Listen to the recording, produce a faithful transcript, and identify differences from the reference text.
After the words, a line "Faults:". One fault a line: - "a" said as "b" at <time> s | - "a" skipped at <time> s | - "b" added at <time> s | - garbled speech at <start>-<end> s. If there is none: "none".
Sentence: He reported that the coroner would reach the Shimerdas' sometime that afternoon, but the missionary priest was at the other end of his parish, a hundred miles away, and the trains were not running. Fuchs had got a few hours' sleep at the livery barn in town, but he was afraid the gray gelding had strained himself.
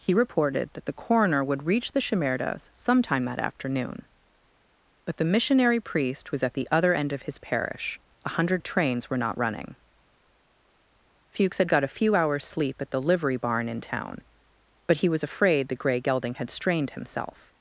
He reported that the coroner would reach the Shimerdas' sometime that afternoon, but the missionary priest was at the other end of his parish, a hundred the trains were not running. Fuchs had got a few hours' sleep at the livery barn in town, but he was afraid the gray gelding had strained himself.
Faults:
- "miles away and" skipped at 8.6 s